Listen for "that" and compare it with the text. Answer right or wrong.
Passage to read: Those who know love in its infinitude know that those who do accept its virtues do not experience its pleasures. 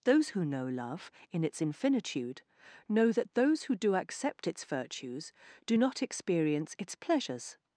right